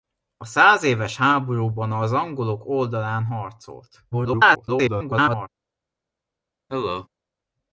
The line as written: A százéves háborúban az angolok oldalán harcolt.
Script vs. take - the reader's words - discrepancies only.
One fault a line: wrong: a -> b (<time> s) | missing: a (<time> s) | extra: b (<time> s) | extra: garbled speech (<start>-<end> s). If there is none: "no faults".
extra: garbled speech (4.1-5.5 s)